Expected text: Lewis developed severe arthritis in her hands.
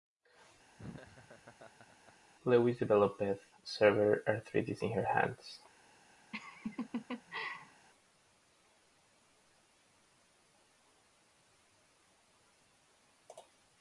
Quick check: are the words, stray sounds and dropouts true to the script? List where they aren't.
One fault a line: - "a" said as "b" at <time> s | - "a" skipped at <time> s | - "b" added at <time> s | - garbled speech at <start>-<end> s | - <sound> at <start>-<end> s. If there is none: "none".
- laugh at 0.8-2.1 s
- laugh at 6.3-7.9 s